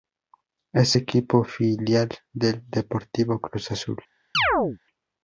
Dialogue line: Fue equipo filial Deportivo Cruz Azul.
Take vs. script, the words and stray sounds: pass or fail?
fail